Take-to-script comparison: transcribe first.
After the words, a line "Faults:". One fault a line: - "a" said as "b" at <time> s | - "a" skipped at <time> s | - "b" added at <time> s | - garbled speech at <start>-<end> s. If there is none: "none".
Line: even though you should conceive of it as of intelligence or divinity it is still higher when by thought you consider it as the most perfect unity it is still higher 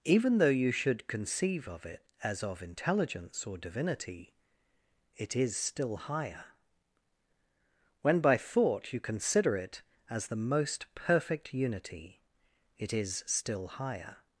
even though you should conceive of it as of intelligence or divinity it is still higher when by thought you consider it as the most perfect unity it is still higher
Faults:
none